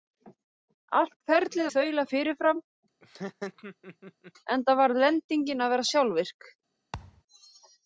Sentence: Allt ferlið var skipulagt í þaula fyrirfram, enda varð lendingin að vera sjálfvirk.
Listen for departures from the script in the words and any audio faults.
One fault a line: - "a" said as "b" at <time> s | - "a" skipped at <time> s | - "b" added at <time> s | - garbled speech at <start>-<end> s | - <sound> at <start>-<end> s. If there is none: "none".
- "var skipulagt" skipped at 1.7 s
- laugh at 3.0-4.3 s
- thud at 6.9-7.2 s